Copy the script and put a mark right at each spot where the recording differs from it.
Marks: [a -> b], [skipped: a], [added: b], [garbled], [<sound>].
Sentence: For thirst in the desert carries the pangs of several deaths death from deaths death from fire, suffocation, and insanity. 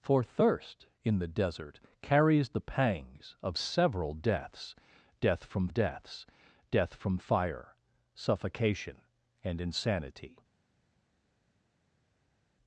For thirst in the desert carries the pangs of several deaths death from deaths death from fire, suffocation, and insanity.